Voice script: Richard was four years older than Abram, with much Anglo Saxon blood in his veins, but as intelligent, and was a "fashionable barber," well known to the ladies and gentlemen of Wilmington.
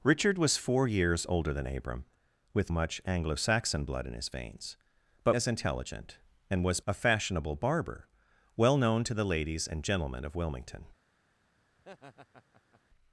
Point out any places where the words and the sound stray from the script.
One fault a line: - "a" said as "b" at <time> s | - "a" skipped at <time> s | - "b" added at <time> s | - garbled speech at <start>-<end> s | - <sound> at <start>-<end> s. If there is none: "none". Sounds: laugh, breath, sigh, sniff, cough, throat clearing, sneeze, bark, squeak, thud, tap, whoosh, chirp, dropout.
- laugh at 11.8-12.8 s